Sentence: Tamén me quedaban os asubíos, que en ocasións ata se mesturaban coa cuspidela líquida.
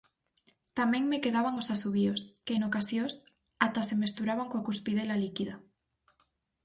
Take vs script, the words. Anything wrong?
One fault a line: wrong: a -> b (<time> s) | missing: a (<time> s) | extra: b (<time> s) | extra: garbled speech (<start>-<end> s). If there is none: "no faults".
no faults